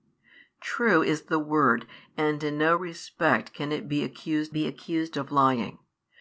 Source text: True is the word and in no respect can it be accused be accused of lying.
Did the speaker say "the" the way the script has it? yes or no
yes